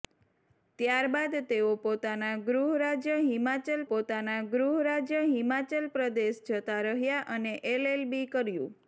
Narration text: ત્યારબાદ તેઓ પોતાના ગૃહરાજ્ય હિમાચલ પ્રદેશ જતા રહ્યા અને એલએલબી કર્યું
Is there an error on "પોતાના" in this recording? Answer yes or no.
no